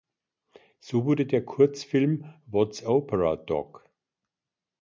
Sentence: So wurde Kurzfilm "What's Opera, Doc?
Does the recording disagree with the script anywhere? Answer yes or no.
yes